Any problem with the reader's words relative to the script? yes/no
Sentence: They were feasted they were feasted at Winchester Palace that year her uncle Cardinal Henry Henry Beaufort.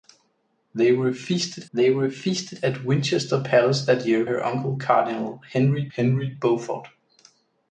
no